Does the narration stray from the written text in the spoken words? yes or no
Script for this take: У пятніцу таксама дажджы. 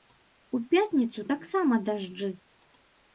no